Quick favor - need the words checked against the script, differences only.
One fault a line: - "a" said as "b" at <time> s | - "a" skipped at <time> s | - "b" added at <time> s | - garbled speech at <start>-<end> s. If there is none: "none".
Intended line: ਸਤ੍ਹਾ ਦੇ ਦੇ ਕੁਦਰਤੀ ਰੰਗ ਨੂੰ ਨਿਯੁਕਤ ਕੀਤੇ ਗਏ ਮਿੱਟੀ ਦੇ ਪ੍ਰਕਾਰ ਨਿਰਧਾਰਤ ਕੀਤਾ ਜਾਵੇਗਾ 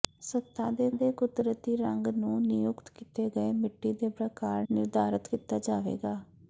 none